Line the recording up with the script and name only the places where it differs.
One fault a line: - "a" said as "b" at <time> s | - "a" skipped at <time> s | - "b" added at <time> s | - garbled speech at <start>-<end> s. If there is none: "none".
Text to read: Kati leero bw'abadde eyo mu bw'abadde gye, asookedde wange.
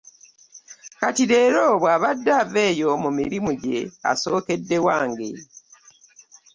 - "ava" added at 2.4 s
- "bw'abadde" said as "mirimu" at 3.2 s